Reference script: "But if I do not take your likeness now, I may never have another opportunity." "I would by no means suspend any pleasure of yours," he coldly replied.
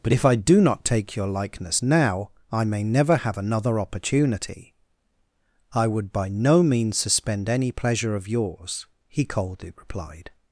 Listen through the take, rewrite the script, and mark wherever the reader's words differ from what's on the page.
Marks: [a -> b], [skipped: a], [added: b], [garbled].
"But if I do not take your likeness now, I may never have another opportunity." "I would by no means suspend any pleasure of yours," he coldly replied.